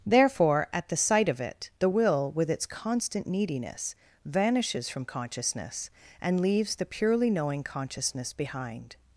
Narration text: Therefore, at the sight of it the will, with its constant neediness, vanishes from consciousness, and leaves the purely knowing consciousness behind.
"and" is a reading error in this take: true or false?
false